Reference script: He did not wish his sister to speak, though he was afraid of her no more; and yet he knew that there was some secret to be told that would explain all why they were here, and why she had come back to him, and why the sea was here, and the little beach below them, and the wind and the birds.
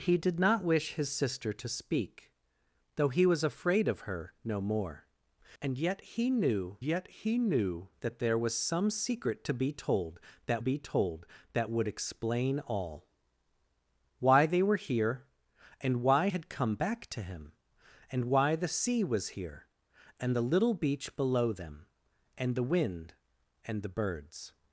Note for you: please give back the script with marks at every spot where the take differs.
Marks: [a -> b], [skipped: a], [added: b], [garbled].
He did not wish his sister to speak, though he was afraid of her no more; and yet he knew [added: yet he knew] that there was some secret to be told that [added: be told that] would explain all why they were here, and why [skipped: she] had come back to him, and why the sea was here, and the little beach below them, and the wind and the birds.